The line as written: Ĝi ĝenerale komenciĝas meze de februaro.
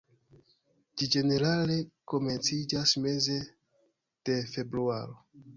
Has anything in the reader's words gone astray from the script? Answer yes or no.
no